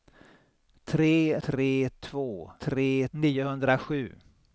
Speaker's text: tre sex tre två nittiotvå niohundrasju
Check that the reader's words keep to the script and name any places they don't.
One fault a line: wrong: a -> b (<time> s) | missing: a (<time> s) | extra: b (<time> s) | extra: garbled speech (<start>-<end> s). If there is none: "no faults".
missing: sex (1.4 s)
wrong: nittiotvå -> tre (2.6 s)